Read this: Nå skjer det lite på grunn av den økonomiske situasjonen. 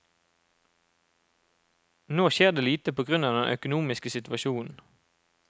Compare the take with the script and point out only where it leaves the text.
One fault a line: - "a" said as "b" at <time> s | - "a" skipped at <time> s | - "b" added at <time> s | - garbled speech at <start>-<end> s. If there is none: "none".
none